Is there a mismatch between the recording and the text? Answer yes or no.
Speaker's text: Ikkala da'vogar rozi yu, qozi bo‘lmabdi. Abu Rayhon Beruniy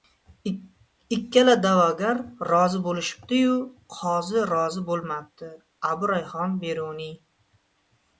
yes